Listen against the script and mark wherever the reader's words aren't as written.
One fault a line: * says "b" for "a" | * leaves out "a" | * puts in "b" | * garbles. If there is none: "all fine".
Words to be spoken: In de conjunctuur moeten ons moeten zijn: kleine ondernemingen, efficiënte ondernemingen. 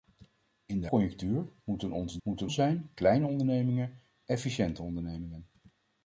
all fine